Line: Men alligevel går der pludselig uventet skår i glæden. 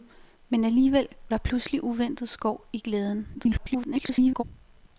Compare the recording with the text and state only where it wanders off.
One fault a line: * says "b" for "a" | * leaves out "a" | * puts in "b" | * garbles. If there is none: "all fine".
* leaves out "går"
* garbles